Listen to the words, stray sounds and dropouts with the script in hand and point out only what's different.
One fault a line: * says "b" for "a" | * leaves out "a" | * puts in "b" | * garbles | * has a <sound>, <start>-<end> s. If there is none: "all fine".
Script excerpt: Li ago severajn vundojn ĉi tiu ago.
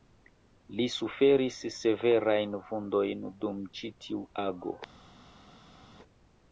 * says "suferis" for "ago"
* puts in "dum"